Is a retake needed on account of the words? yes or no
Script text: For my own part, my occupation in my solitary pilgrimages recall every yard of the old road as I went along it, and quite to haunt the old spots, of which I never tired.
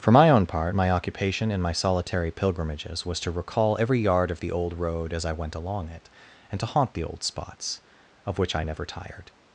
yes